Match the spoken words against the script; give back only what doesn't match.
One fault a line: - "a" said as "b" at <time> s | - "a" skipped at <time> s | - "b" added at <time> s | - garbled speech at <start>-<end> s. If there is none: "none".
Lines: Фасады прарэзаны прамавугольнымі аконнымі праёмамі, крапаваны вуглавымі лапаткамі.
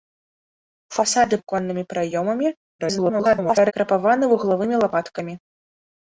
- "прарэзаны прамавугольнымі" skipped at 1.4 s
- garbled speech at 2.8-3.7 s